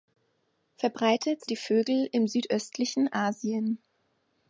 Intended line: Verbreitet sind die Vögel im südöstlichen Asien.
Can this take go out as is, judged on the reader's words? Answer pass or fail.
fail